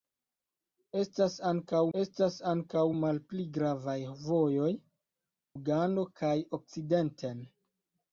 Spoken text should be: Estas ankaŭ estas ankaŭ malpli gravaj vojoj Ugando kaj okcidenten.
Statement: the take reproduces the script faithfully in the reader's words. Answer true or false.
true